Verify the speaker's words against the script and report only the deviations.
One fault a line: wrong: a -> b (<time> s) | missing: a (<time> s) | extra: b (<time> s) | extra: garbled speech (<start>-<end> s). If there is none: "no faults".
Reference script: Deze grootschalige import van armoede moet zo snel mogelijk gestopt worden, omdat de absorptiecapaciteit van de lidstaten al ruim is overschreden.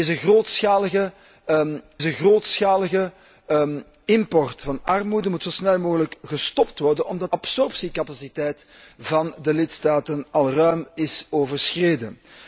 extra: deze grootschalige (2.0 s)
missing: de (7.3 s)